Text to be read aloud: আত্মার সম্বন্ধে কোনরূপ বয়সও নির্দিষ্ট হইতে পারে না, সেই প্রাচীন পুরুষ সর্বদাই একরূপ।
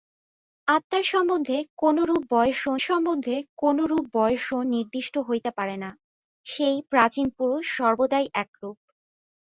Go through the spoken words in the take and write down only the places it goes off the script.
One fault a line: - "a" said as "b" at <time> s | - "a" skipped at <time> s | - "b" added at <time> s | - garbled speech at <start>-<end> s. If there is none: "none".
- "সম্বন্ধে কোনরূপ বয়সও" added at 2.8 s